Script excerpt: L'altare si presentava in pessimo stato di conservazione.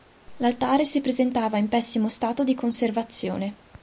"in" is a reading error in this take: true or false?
false